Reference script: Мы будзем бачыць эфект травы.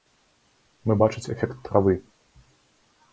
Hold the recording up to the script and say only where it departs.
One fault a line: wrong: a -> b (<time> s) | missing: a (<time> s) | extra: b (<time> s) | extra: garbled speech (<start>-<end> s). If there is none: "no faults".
missing: будзем (1.0 s)